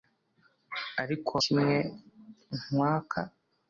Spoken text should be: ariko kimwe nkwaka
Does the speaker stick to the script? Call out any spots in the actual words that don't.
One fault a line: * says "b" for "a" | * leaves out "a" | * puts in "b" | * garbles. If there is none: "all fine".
all fine